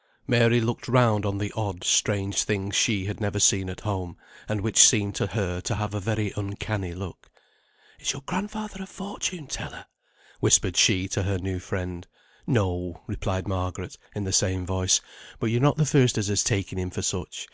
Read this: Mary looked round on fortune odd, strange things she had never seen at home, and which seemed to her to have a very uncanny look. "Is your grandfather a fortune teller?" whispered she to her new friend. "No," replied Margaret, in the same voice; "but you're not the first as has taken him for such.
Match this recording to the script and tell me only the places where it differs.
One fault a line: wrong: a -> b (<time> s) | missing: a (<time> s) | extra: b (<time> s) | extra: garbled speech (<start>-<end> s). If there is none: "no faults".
wrong: fortune -> the (1.4 s)